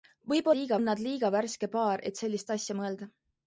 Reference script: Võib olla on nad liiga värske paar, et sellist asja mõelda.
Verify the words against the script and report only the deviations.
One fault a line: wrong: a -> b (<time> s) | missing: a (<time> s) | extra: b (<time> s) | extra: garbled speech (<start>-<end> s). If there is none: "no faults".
wrong: olla -> liiga (0.5 s)